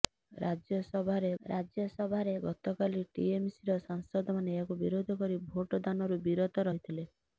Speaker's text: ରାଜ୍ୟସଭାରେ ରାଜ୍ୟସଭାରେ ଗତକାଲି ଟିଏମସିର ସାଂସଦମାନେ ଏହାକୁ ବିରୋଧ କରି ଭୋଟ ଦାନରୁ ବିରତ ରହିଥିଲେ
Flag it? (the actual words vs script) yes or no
no